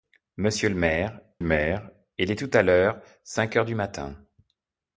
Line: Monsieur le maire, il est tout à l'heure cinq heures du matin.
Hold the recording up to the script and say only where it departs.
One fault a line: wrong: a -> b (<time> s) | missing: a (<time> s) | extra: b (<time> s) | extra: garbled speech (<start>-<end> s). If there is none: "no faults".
extra: maire (1.4 s)